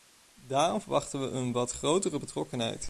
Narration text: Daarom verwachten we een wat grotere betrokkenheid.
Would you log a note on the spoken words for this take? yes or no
no